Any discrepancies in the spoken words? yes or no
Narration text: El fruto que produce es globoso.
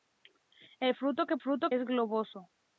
yes